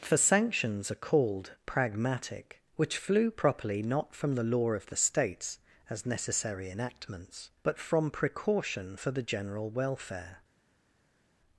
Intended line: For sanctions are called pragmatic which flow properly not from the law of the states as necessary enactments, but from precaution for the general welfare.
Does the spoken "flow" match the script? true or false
false